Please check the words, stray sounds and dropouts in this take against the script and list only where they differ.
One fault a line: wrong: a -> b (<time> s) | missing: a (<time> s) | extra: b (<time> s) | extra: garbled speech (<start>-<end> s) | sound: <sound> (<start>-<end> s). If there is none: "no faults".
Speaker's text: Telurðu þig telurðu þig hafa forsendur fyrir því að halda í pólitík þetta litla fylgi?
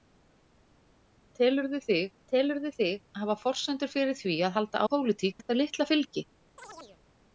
sound: chirp (6.6-7.0 s)